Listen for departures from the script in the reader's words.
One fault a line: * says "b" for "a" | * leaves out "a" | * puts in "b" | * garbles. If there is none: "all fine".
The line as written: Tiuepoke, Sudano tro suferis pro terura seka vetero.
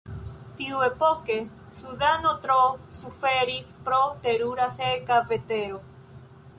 all fine